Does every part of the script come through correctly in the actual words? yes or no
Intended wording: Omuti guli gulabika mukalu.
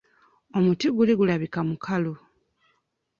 yes